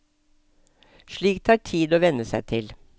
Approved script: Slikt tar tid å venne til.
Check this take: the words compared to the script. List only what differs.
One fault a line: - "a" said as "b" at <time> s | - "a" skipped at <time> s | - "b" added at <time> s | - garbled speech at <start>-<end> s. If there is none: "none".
- "seg" added at 2.3 s